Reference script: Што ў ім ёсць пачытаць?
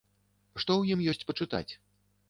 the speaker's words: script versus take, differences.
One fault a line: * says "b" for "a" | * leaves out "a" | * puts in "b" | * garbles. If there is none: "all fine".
all fine